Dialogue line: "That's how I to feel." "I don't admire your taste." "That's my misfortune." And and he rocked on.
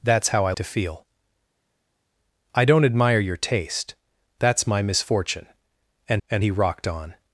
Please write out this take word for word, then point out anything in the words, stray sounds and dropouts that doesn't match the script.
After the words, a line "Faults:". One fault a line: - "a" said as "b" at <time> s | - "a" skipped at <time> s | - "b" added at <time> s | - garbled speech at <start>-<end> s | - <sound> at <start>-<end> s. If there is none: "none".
"That's how I to feel." "I don't admire your taste." "That's my misfortune." And and he rocked on.
Faults:
none